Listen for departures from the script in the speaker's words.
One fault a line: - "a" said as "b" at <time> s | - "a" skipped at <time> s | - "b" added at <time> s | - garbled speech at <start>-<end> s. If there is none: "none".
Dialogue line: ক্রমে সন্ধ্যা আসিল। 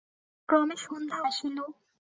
none